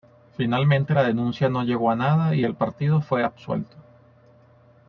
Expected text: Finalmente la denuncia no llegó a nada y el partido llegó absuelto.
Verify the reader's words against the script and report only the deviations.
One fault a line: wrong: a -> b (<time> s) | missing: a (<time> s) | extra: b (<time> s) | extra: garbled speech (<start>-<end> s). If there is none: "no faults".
wrong: llegó -> fue (3.0 s)